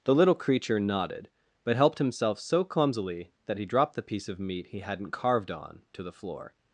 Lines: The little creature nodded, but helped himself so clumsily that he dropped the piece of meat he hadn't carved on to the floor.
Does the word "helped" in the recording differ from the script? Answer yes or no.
no